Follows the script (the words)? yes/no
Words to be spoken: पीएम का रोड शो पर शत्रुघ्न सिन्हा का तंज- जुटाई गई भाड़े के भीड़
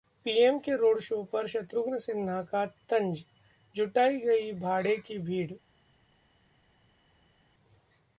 no